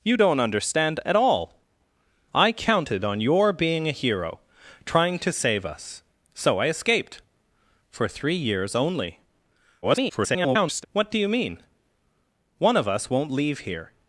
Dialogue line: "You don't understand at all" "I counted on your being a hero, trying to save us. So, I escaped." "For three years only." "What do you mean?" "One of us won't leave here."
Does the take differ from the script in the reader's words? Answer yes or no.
yes